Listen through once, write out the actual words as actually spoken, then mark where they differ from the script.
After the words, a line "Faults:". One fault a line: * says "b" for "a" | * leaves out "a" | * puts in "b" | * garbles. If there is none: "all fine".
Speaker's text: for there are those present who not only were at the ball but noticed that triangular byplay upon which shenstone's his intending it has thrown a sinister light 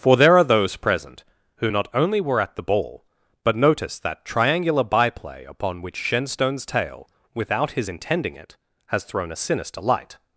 for there are those present who not only were at the ball but noticed that triangular byplay upon which shenstone's tale without his intending it has thrown a sinister light
Faults:
* puts in "tale without"